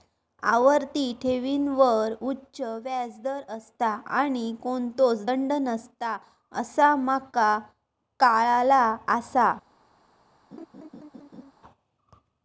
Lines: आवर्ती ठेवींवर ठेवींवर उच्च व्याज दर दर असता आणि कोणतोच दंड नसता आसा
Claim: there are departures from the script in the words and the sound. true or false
true